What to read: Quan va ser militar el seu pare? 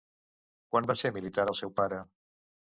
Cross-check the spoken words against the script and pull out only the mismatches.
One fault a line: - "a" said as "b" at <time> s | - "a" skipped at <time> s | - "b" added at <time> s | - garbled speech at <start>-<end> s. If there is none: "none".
none